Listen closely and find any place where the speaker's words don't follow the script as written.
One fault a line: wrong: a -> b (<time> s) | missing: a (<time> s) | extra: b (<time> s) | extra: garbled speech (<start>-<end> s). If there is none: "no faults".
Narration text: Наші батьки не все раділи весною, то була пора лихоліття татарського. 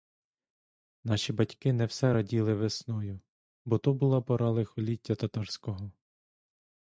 extra: бо (3.6 s)